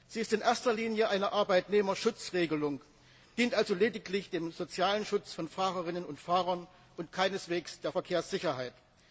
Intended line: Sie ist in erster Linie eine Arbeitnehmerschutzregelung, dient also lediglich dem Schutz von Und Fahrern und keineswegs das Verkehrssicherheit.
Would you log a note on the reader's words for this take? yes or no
yes